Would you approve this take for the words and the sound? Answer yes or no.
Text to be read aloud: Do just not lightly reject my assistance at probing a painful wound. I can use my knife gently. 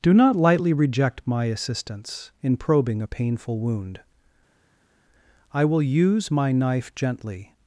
no